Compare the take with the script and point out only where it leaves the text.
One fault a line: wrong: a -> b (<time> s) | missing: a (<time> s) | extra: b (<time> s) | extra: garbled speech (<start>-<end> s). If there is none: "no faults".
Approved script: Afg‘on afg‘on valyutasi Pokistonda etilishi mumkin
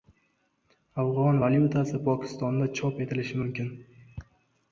missing: afg‘on (1.4 s)
extra: chop (2.8 s)